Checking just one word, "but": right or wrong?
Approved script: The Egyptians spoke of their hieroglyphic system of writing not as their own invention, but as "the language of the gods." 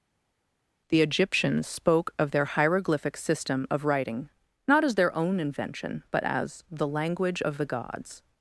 right